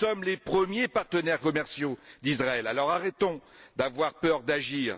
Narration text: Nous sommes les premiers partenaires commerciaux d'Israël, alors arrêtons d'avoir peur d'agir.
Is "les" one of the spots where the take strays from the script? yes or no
no